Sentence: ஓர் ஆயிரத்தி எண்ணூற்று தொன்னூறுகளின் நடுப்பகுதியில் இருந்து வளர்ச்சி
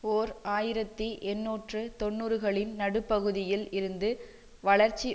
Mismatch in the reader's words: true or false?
false